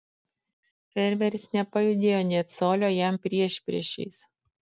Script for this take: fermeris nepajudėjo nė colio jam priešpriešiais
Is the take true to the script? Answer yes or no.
yes